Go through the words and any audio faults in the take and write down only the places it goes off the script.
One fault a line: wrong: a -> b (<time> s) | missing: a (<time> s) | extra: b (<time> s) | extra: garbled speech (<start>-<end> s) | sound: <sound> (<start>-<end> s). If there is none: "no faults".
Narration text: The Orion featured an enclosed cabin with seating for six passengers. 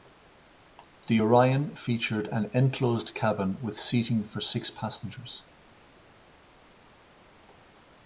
no faults